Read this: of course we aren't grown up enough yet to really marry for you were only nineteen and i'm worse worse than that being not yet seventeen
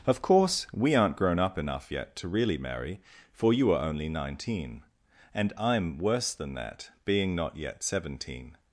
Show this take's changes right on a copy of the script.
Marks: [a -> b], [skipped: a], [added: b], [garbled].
of course we aren't grown up enough yet to really marry for you [were -> are] only nineteen and i'm worse [skipped: worse] than that being not yet seventeen